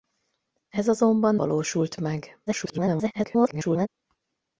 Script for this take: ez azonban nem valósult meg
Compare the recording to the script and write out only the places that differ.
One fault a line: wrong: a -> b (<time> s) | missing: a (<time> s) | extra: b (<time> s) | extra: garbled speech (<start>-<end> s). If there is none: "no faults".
missing: nem (1.4 s)
extra: garbled speech (2.5-3.9 s)